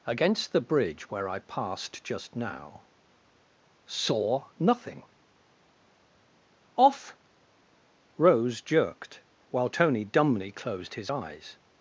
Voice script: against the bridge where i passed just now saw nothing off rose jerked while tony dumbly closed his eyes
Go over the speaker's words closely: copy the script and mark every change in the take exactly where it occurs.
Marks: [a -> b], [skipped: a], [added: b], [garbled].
against the bridge where i passed just now saw nothing off rose jerked while tony dumbly closed his eyes